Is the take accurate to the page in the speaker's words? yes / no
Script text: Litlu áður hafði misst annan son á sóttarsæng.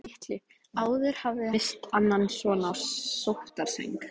yes